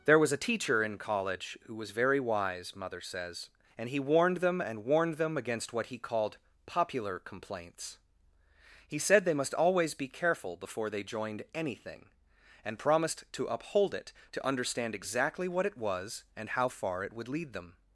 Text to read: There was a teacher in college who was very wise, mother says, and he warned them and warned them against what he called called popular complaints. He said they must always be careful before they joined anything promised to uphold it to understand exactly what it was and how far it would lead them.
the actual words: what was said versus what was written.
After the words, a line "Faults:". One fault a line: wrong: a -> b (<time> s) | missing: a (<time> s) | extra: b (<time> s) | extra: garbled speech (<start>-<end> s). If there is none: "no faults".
There was a teacher in college who was very wise, mother says, and he warned them and warned them against what he called popular complaints. He said they must always be careful before they joined anything and promised to uphold it to understand exactly what it was and how far it would lead them.
Faults:
missing: called (6.4 s)
extra: and (12.7 s)